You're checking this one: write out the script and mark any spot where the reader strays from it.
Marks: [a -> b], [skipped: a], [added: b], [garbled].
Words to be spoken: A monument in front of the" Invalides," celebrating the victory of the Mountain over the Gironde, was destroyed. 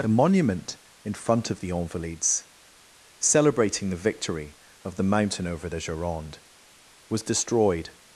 A monument in front of the" Invalides," celebrating the victory of the Mountain over the Gironde, was destroyed.